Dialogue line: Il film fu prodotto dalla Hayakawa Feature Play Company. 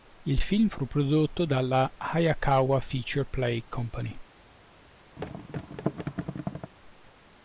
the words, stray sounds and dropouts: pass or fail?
fail